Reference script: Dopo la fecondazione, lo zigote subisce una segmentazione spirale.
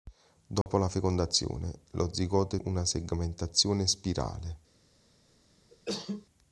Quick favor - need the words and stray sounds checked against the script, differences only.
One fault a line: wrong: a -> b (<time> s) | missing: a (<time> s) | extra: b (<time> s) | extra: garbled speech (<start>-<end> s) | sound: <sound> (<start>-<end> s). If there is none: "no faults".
sound: dropout (0.6-0.7 s)
missing: subisce (2.6 s)
sound: cough (5.7-6.3 s)